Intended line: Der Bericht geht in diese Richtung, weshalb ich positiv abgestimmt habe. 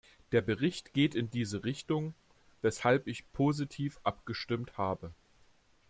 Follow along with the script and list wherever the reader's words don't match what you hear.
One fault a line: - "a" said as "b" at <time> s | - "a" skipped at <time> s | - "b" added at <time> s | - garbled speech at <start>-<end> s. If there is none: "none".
none